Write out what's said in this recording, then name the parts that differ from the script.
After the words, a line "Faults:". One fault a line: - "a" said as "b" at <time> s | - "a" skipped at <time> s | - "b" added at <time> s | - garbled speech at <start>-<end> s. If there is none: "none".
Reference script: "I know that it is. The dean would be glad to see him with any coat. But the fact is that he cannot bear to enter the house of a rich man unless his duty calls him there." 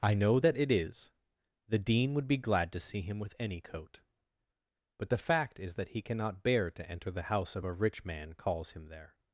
"I know that it is. The dean would be glad to see him with any coat. But the fact is that he cannot bear to enter the house of a rich man calls him there."
Faults:
- "unless his duty" skipped at 8.3 s